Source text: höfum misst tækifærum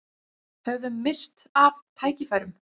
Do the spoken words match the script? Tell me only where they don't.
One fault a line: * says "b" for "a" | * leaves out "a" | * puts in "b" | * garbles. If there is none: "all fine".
* puts in "af"